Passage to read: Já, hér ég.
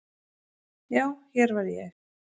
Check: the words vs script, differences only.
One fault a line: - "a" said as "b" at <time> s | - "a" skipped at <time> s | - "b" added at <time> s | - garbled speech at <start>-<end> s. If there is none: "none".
- "var" added at 1.5 s